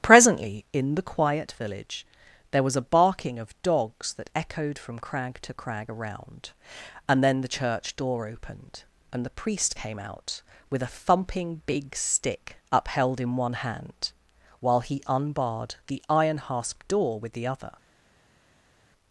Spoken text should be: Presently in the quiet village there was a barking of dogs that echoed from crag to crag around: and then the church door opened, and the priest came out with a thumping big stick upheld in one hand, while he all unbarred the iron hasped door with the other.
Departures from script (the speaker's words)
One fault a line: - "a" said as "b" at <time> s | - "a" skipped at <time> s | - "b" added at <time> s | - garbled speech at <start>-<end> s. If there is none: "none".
- "all" skipped at 15.0 s